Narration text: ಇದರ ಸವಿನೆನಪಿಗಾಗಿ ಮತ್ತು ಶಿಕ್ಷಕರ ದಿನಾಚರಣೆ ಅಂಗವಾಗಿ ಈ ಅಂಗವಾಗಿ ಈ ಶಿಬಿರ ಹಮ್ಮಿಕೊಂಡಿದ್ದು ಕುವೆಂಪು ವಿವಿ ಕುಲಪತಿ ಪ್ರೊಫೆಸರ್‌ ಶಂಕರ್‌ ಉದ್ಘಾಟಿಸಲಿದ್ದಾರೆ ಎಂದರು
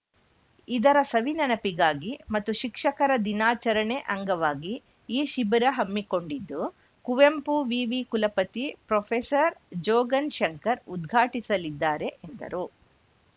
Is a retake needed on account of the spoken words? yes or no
yes